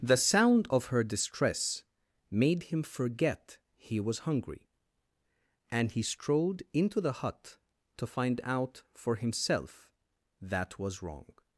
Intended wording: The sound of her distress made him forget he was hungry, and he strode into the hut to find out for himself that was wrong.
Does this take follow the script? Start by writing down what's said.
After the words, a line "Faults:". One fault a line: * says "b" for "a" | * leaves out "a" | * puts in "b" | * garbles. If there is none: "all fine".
The sound of her distress made him forget he was hungry, and he strode into the hut to find out for himself that was wrong.
Faults:
all fine